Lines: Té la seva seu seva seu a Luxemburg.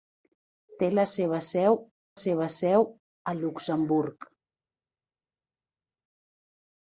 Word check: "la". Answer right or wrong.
right